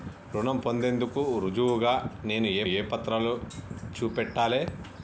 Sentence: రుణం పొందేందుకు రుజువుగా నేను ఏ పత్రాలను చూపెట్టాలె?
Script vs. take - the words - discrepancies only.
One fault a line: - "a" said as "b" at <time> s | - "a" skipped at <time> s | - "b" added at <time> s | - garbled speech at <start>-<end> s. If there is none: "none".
- "ఏ" added at 2.6 s